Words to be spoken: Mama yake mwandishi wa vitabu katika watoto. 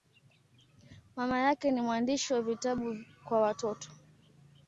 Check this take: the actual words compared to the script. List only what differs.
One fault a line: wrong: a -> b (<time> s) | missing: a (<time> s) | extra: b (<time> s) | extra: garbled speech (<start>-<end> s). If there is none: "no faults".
extra: ni (1.7 s)
wrong: katika -> kwa (3.2 s)